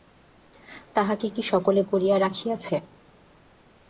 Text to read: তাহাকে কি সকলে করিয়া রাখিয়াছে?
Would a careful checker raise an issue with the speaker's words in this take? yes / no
no